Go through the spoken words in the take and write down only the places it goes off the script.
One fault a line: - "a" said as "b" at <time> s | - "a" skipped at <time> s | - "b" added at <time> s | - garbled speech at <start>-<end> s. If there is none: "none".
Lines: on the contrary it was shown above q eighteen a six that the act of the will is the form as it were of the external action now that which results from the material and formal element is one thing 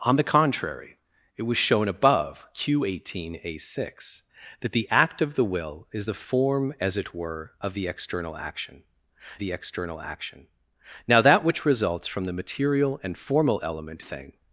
- "the external action" added at 9.4 s
- "is one" skipped at 14.0 s